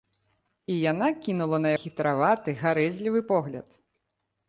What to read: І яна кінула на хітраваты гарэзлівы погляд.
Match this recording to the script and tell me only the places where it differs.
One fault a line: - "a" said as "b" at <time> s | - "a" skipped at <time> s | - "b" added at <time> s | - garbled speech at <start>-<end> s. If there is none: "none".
none